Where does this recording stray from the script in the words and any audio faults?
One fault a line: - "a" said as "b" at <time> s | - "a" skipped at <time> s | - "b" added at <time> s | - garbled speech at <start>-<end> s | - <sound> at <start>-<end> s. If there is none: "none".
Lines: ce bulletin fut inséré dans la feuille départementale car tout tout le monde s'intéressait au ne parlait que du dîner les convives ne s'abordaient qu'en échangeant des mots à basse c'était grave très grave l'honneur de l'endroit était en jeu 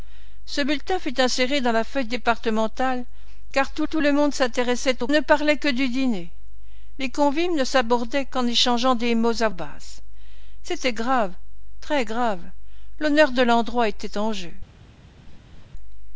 - laugh at 15.2-15.7 s